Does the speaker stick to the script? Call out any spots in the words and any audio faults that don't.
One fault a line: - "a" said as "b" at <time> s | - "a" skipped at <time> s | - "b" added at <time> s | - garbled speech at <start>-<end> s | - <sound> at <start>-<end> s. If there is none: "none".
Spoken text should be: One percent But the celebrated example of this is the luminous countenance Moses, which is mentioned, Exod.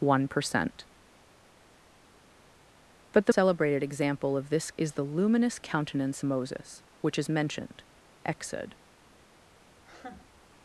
- laugh at 9.8-10.4 s